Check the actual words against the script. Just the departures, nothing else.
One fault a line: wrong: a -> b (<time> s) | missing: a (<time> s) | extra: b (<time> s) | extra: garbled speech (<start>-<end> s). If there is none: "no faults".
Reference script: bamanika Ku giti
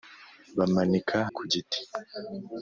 no faults